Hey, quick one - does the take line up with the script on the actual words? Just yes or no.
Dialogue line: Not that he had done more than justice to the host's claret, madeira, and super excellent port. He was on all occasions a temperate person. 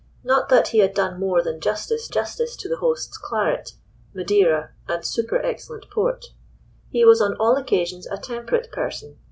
no